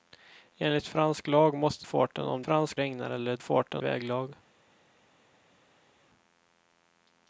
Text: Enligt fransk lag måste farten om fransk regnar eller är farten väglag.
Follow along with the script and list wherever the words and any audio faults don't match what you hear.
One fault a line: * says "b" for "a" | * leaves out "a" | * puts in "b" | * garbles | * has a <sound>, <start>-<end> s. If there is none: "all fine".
all fine